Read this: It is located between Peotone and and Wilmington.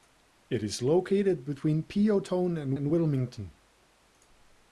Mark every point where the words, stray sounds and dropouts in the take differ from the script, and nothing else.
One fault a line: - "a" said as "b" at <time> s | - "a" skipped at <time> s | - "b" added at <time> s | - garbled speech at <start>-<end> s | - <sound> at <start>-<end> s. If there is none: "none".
none